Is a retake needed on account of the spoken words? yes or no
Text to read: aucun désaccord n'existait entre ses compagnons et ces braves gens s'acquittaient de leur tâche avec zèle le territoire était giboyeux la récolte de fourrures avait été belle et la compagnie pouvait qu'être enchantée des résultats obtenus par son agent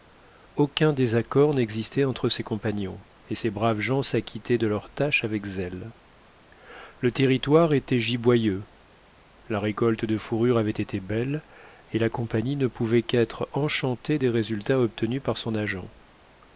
yes